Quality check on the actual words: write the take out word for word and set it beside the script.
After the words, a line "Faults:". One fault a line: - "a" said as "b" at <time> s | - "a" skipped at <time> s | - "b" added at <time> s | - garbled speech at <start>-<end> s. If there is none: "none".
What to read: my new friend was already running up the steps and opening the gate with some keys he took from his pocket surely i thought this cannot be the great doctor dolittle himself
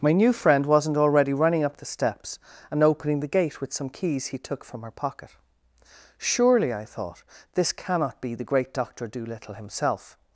my new friend wasn't already running up the steps and opening the gate with some keys he took from her pocket surely i thought this cannot be the great doctor dolittle himself
Faults:
- "was" said as "wasn't" at 0.7 s
- "his" said as "her" at 4.8 s